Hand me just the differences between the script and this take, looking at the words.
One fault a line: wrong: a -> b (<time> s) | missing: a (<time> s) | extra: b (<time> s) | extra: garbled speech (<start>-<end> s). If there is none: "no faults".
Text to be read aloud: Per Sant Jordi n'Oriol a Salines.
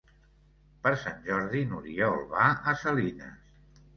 extra: va (2.3 s)